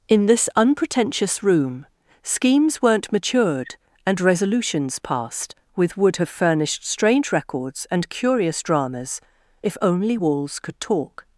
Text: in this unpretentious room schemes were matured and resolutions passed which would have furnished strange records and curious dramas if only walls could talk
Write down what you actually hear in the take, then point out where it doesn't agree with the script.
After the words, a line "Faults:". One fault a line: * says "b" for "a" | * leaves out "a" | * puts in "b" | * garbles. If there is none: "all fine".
in this unpretentious room schemes weren't matured and resolutions passed with would have furnished strange records and curious dramas if only walls could talk
Faults:
* says "weren't" for "were"
* says "with" for "which"